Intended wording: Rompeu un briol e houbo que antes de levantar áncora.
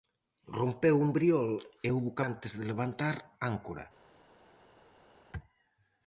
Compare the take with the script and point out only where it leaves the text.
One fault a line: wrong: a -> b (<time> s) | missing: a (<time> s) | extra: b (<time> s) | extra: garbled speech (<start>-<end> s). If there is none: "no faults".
no faults